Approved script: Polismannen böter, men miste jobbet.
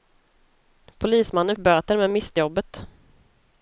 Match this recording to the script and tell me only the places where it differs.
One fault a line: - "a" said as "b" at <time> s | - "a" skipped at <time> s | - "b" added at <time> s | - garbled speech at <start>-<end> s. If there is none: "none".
none